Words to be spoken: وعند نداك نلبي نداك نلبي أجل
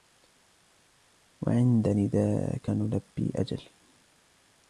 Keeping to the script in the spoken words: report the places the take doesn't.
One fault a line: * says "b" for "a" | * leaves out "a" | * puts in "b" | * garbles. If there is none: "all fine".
* leaves out "نداك نلبي"